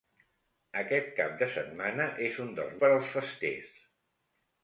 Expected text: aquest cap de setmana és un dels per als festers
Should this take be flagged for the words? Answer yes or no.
no